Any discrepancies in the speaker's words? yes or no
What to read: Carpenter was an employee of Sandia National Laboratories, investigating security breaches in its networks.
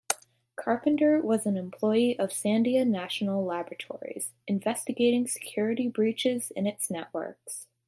no